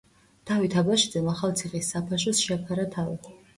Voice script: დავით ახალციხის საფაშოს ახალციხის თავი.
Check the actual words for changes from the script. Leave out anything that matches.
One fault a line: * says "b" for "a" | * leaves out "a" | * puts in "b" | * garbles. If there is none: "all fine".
* puts in "აბაშიძემ"
* says "შეაფარა" for "ახალციხის"